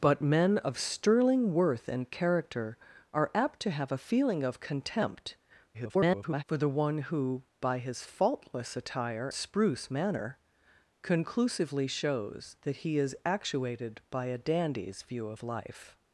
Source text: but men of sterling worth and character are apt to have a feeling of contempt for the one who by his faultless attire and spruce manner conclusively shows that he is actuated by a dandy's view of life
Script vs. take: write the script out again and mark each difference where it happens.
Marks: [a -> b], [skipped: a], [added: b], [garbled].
but men of sterling worth and character are apt to have a feeling of contempt [garbled] for the one who by his faultless attire [skipped: and] spruce manner conclusively shows that he is actuated by a dandy's view of life